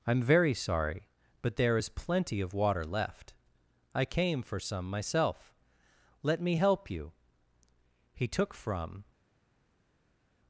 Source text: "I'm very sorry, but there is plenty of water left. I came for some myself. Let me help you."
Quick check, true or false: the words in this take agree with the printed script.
false